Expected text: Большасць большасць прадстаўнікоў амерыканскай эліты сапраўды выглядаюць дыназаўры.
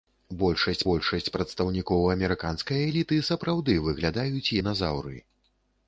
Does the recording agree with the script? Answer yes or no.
yes